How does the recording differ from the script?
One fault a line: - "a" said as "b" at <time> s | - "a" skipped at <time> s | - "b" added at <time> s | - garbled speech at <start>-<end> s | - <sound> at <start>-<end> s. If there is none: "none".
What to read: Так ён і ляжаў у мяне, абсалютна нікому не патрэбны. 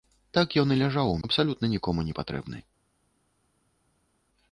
- "мяне" skipped at 1.2 s